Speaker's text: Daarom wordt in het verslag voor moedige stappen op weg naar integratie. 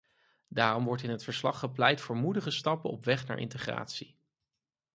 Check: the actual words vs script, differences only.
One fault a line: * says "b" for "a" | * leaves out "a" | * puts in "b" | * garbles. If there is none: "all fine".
* puts in "gepleit"